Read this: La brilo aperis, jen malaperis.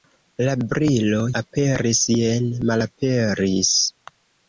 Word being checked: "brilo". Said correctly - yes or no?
yes